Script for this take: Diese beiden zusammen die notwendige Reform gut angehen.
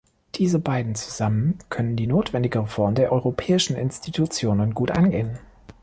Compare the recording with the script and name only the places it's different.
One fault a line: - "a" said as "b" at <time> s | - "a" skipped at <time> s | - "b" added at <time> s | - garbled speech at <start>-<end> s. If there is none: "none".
- "können" added at 1.7 s
- "der Europäischen Institutionen" added at 2.9 s